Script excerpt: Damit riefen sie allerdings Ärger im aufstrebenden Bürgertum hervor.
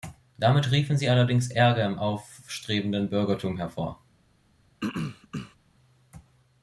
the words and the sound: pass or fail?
fail